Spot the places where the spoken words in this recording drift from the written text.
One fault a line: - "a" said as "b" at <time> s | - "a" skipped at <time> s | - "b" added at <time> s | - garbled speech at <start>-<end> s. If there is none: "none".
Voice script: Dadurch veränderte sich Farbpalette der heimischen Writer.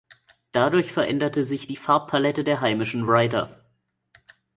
- "die" added at 1.6 s